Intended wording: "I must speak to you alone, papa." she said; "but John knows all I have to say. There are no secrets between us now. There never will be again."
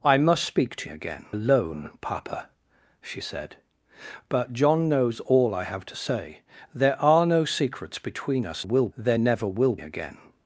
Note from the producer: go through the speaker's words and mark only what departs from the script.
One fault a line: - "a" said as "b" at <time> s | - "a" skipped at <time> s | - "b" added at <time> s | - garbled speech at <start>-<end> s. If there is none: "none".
- "you" said as "again" at 0.8 s
- "now" said as "will" at 8.6 s
- "be" skipped at 9.8 s